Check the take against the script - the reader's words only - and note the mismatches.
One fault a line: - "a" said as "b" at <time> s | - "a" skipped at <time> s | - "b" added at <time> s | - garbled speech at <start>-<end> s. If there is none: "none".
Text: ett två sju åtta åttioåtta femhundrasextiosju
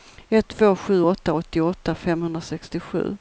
none